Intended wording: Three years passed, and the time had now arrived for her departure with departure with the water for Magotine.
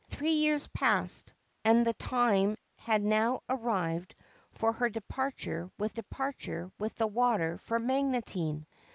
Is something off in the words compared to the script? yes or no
no